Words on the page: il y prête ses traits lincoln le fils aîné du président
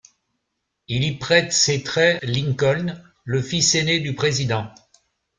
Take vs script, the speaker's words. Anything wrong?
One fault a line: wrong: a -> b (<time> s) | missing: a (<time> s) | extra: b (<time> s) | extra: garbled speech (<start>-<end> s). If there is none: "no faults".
no faults